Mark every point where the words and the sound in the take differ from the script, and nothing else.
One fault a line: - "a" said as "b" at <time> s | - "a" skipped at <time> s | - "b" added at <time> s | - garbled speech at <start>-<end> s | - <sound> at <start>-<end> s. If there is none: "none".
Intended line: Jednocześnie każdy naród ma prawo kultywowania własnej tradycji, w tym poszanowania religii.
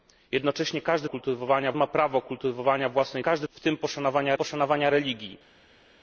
- "naród" said as "kultywowania" at 1.0 s
- "tradycji" said as "każdy" at 3.2 s
- "poszanowania" added at 4.3 s